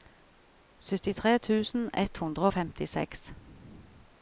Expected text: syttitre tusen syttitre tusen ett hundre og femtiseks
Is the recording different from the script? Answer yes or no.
yes